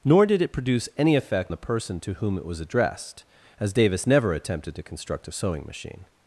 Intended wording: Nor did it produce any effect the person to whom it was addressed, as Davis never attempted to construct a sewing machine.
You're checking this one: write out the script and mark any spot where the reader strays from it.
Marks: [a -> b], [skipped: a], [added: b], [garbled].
Nor did it produce any effect the person to whom it was addressed, as Davis never attempted to construct a sewing machine.